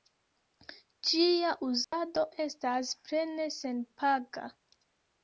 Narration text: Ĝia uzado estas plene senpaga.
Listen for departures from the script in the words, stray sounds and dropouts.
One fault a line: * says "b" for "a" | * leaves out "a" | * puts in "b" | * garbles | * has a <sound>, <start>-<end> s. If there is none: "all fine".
* has a dropout, 1.8-1.9 s